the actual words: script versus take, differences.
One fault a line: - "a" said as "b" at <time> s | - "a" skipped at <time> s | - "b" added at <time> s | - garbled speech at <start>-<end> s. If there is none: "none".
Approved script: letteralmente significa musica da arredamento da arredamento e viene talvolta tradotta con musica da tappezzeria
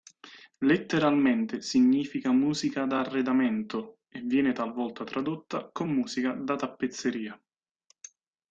- "da arredamento" skipped at 4.0 s